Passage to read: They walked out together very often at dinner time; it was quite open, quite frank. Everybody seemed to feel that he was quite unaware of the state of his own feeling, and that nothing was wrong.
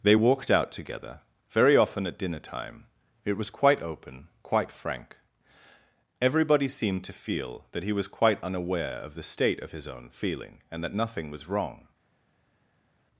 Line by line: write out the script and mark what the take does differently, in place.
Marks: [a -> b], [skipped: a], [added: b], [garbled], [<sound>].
They walked out together very often at dinner time; it was quite open, quite frank. Everybody seemed to feel that he was quite unaware of the state of his own feeling, and that nothing was wrong.